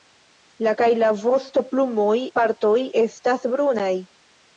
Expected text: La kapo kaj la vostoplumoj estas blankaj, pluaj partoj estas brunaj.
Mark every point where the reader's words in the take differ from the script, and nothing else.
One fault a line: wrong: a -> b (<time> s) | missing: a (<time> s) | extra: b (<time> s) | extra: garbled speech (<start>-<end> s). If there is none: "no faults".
missing: kapo (0.7 s)
missing: estas blankaj pluaj (2.2 s)